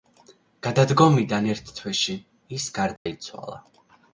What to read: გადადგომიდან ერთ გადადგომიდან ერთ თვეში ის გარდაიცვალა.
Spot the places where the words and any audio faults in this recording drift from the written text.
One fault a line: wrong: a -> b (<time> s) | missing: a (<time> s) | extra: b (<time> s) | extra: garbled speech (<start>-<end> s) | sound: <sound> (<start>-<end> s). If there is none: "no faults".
missing: გადადგომიდან ერთ (1.7 s)
sound: dropout (3.0-3.1 s)